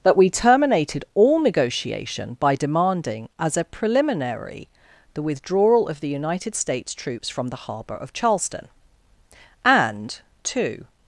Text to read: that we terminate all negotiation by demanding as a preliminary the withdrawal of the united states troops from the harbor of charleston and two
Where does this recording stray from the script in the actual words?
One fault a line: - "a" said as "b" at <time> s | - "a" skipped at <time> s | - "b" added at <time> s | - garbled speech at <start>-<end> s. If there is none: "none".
- "terminate" said as "terminated" at 0.3 s